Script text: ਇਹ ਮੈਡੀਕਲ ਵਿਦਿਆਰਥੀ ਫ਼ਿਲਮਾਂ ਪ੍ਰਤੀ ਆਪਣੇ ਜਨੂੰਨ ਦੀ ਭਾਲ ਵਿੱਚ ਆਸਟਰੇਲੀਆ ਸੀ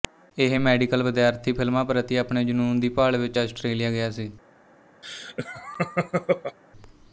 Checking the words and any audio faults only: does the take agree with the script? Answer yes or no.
no